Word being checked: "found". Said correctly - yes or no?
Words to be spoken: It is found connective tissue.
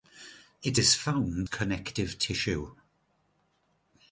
yes